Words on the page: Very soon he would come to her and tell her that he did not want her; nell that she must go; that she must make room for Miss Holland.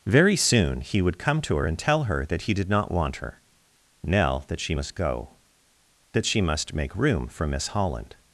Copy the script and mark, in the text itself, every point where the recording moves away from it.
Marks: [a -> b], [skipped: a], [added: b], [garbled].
Very soon he would come to her and tell her that he did not want her; nell that she must go; that she must make room for Miss Holland.